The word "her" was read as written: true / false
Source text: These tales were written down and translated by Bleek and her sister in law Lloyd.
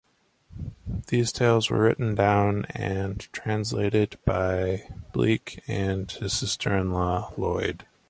false